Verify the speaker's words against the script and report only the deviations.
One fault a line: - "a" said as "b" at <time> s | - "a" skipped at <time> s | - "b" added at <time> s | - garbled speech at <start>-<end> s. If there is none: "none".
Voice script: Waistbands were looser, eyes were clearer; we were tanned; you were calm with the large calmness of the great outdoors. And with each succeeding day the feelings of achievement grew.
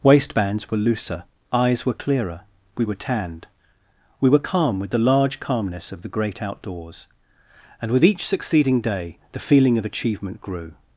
- "you" said as "we" at 4.2 s
- "feelings" said as "feeling" at 9.4 s